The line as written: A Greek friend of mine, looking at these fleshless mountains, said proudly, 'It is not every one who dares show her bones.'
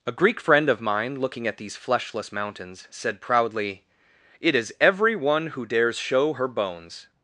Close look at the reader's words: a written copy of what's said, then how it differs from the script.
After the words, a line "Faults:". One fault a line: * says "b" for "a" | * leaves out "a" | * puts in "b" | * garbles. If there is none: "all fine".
A Greek friend of mine, looking at these fleshless mountains, said proudly, 'It is every one who dares show her bones.'
Faults:
* leaves out "not"